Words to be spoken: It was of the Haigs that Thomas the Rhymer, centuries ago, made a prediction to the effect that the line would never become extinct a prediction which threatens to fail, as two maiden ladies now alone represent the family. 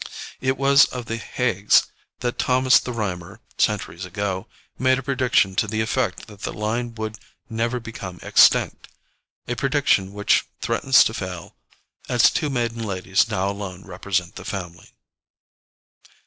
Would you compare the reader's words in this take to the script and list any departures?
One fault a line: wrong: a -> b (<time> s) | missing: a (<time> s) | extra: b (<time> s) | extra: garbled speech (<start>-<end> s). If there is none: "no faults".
no faults